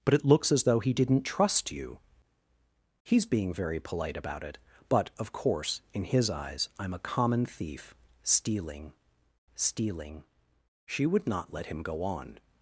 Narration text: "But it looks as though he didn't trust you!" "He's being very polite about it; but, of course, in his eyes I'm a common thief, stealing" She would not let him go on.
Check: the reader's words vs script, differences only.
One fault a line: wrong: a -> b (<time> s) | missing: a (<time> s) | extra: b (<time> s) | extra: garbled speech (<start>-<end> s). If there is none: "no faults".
extra: stealing (9.5 s)